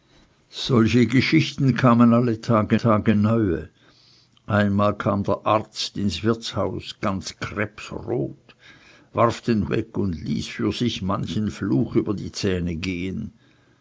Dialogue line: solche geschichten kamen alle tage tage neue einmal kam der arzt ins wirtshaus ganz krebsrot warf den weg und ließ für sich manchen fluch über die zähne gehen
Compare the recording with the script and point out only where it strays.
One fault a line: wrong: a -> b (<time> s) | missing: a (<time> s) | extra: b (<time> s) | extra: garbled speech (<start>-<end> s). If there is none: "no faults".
no faults